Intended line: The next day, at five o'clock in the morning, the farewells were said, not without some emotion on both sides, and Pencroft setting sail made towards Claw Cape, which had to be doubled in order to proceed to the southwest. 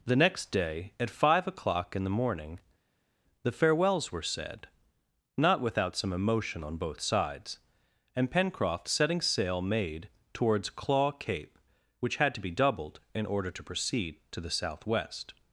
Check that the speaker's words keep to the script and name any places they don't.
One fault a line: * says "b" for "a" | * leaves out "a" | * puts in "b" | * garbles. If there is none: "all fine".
all fine